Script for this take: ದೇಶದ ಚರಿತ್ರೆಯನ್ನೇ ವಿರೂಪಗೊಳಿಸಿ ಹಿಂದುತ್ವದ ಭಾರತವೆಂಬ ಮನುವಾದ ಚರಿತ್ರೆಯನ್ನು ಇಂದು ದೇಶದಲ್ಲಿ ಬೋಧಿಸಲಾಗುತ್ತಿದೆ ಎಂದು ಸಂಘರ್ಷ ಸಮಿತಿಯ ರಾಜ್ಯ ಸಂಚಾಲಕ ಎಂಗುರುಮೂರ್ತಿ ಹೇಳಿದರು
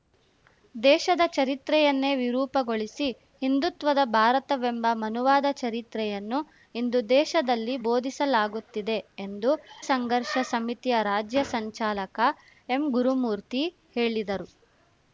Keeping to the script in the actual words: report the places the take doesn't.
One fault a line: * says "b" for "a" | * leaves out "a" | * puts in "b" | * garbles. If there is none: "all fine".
all fine